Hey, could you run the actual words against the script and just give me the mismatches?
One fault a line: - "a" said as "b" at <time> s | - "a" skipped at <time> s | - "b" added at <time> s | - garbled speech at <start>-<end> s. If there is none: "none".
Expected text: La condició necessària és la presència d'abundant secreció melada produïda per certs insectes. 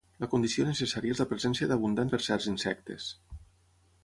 - "secreció melada produïda" skipped at 2.1 s